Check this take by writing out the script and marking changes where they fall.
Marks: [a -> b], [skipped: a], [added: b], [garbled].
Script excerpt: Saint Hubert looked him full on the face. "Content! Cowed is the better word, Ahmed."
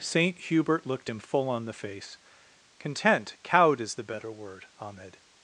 Saint Hubert looked him full on the face. "Content! Cowed is the better word, Ahmed."